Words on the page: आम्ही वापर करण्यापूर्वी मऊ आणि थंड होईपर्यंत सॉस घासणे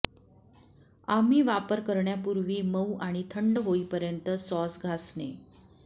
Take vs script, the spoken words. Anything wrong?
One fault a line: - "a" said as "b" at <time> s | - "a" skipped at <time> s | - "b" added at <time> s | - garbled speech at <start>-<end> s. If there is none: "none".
none